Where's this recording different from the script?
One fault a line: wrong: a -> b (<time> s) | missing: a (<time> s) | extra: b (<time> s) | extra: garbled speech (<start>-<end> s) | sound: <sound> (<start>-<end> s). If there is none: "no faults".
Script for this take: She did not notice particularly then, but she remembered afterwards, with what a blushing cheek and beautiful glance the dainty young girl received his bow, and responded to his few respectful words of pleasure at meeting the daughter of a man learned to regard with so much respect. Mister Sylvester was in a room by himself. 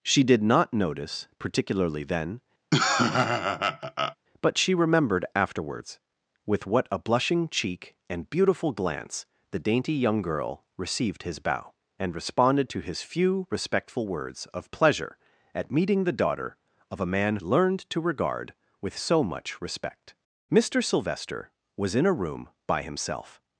sound: laugh (2.7-4.2 s)